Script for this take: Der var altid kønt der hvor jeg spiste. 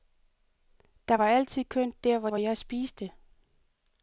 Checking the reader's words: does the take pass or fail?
fail